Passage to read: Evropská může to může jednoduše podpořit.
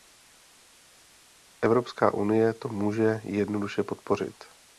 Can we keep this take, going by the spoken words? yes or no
no